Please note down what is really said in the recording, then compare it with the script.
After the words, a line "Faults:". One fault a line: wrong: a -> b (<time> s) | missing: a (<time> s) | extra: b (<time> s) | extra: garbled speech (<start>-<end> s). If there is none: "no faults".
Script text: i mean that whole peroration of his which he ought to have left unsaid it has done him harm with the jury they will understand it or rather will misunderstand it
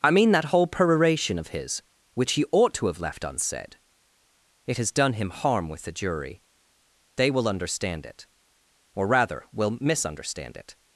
i mean that whole peroration of his which he ought to have left unsaid it has done him harm with the jury they will understand it or rather will misunderstand it
Faults:
no faults